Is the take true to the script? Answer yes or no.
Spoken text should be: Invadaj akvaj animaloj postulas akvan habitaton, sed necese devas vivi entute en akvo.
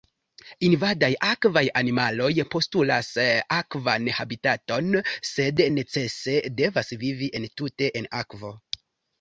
yes